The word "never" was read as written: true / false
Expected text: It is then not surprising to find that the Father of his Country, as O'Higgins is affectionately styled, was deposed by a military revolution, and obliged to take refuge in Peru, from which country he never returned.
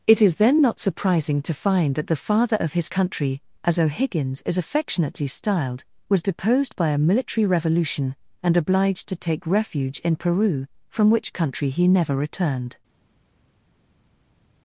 true